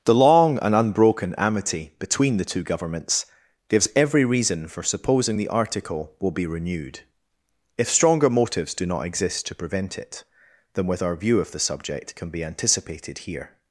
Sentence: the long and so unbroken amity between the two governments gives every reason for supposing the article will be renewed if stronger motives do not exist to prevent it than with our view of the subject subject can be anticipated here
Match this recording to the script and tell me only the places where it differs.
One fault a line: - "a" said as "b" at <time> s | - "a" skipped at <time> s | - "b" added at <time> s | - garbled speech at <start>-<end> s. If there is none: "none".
- "so" skipped at 0.7 s
- "subject" skipped at 12.1 s